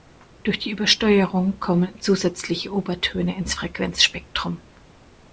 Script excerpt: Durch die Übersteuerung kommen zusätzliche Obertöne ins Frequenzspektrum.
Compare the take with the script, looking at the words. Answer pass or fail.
pass